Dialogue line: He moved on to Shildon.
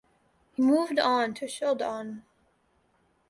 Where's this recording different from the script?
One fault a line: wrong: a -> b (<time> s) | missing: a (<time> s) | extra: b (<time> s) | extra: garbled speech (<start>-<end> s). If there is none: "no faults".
no faults